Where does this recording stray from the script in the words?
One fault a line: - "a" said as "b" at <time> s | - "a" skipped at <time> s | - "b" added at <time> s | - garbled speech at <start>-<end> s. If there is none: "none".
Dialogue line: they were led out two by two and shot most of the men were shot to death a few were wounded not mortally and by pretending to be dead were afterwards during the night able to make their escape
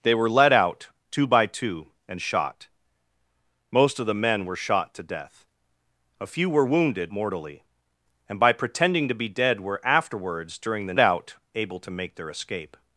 - "not" skipped at 7.1 s
- "night" said as "out" at 11.0 s